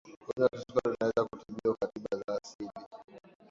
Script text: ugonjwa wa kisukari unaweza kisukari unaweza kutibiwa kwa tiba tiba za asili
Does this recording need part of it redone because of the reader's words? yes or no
yes